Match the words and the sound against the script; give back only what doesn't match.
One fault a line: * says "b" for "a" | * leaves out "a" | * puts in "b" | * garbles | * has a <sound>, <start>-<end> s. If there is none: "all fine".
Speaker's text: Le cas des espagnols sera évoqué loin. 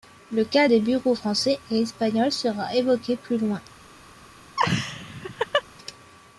* puts in "bureaux français et"
* puts in "plus"
* has a laugh, 4.6-5.6 s